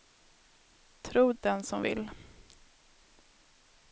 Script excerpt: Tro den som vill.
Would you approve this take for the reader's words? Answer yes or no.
yes